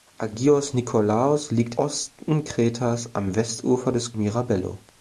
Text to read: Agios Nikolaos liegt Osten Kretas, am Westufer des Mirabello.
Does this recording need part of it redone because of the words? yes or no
no